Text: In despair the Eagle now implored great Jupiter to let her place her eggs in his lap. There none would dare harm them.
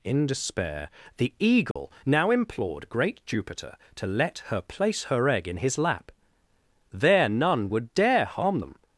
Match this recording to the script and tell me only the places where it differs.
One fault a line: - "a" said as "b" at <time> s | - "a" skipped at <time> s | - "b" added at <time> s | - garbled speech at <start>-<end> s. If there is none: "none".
- "eggs" said as "egg" at 5.3 s